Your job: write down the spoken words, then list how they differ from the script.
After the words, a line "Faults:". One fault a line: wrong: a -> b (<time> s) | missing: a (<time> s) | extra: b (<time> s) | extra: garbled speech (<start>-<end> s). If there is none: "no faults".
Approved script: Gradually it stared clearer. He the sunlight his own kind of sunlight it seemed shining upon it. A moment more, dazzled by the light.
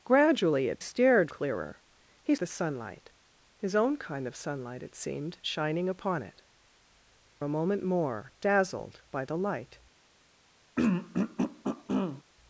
Gradually it stared clearer. He the sunlight his own kind of sunlight it seemed shining upon it. A moment more, dazzled by the light.
Faults:
no faults